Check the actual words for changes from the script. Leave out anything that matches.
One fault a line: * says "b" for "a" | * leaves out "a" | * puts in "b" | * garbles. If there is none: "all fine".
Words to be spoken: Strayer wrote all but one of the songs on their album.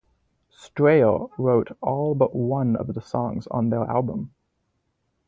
all fine